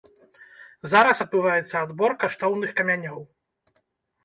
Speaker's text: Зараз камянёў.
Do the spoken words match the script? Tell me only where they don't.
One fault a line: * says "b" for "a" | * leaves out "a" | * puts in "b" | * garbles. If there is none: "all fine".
* puts in "адбываецца адбор каштоўных"